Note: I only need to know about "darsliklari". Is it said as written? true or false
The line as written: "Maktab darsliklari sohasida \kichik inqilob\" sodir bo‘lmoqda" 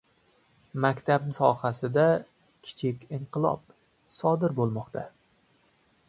false